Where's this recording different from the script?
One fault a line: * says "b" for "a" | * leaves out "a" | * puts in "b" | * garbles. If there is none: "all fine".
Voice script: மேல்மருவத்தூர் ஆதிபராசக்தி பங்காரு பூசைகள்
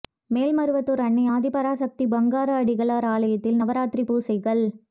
* puts in "அன்னை"
* puts in "அடிகளார் ஆலயத்தில் நவராத்திரி"